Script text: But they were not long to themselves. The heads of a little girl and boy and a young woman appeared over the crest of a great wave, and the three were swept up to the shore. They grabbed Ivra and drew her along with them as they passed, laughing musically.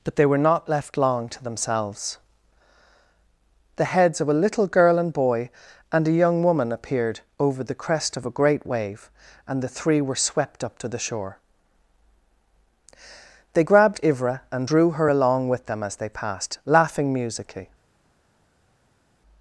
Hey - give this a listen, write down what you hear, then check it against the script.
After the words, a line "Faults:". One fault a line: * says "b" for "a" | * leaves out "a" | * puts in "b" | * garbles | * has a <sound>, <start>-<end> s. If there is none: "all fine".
But they were not left long to themselves. The heads of a little girl and boy and a young woman appeared over the crest of a great wave, and the three were swept up to the shore. They grabbed Ivra and drew her along with them as they passed, laughing musically.
Faults:
* puts in "left"